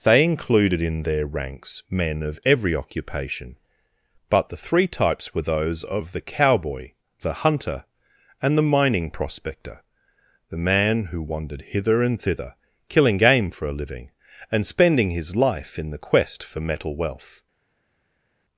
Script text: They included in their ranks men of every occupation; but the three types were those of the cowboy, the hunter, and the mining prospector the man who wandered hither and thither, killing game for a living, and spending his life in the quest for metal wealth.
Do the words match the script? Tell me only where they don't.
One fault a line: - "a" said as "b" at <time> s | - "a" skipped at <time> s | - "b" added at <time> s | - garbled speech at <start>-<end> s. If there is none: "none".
none